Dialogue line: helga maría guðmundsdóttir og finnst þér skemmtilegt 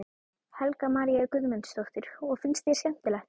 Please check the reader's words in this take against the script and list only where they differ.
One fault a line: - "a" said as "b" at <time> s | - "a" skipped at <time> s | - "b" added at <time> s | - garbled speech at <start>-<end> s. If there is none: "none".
none